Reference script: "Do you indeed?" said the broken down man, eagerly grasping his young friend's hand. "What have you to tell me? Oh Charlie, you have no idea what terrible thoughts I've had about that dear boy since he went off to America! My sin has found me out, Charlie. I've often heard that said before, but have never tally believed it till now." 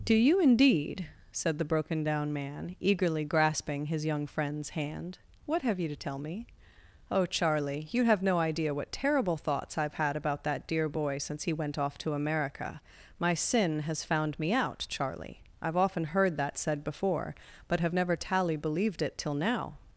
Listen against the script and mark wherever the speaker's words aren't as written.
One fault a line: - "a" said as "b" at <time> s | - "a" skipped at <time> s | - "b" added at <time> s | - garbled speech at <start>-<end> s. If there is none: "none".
none